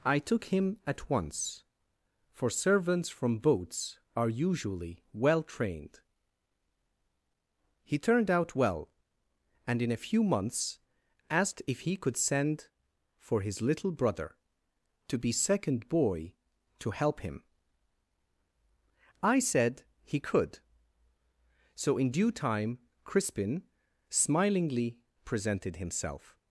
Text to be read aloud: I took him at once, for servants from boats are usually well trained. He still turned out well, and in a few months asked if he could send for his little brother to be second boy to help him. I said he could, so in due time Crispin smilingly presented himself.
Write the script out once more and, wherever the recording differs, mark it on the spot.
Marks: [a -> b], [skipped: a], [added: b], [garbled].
I took him at once, for servants from boats are usually well trained. He [skipped: still] turned out well, and in a few months asked if he could send for his little brother to be second boy to help him. I said he could, so in due time Crispin smilingly presented himself.